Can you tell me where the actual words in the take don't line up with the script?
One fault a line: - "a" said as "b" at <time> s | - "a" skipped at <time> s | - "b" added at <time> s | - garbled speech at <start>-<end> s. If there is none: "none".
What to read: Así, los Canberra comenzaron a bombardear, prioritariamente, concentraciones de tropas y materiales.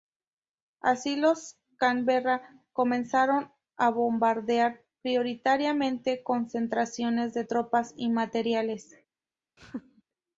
none